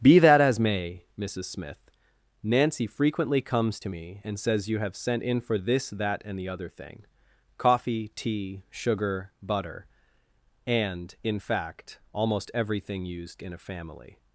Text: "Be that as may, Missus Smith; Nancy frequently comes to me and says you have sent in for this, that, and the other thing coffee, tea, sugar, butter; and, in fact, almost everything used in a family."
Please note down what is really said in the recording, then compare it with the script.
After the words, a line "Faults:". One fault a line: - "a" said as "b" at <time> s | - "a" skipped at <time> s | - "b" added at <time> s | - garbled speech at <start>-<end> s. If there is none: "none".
"Be that as may, Missus Smith; Nancy frequently comes to me and says you have sent in for this, that, and the other thing coffee, tea, sugar, butter; and, in fact, almost everything used in a family."
Faults:
none